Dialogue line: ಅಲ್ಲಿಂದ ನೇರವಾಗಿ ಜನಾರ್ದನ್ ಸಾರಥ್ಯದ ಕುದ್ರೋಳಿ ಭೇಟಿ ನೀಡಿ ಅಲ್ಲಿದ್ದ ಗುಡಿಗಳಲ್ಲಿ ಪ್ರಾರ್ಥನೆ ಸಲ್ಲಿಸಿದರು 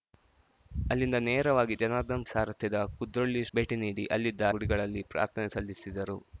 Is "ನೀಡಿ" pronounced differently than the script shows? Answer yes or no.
no